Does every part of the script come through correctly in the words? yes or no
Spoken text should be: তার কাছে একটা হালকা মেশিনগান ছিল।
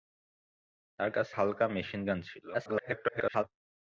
no